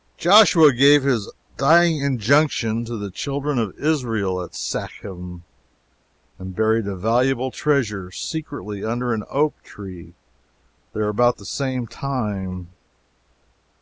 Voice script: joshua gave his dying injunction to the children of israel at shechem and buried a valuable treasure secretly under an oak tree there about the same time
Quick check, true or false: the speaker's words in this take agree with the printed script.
true